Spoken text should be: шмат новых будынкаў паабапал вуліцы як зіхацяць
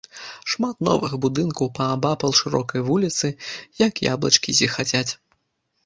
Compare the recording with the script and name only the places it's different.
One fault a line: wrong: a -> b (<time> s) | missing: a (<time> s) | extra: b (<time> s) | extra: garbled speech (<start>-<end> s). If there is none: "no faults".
extra: шырокай (2.4 s)
extra: яблычкі (4.1 s)